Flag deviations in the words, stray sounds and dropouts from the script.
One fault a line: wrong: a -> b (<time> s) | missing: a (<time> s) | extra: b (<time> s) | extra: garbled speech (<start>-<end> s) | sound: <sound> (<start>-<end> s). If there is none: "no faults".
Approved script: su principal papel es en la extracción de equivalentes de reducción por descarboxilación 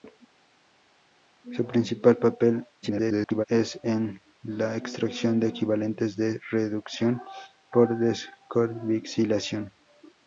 extra: garbled speech (2.8-3.4 s)